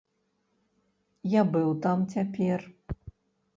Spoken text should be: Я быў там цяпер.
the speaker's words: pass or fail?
pass